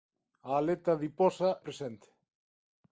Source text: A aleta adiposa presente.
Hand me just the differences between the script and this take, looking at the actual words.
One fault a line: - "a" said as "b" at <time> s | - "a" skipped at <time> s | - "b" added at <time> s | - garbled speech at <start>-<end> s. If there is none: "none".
none